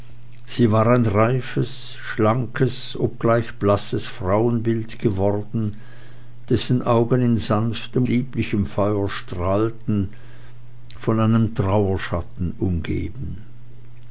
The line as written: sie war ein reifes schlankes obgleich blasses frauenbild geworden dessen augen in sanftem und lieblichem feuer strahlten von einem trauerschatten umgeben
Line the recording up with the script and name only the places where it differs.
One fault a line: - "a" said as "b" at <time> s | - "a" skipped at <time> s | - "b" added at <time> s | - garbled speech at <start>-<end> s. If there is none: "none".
- "und" skipped at 8.1 s